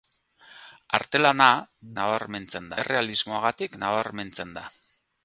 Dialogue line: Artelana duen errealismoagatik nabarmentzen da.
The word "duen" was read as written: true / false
false